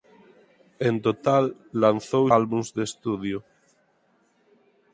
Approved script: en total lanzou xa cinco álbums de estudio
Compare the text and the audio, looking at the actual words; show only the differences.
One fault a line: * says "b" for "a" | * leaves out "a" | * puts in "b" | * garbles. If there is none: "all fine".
* leaves out "xa cinco"